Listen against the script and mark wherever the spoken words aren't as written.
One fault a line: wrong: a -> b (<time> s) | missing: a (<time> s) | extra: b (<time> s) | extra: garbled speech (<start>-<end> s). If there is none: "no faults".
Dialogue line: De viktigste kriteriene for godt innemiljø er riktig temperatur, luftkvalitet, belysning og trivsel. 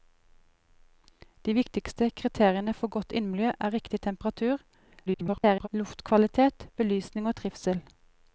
extra: garbled speech (5.1-5.7 s)